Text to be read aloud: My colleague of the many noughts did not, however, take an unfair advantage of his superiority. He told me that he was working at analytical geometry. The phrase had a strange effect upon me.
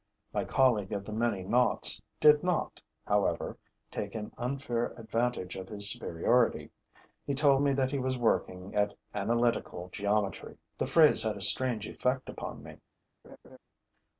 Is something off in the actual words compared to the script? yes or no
no